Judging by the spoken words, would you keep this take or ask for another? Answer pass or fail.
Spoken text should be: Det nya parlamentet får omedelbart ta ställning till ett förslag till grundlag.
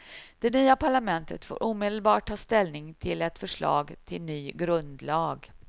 fail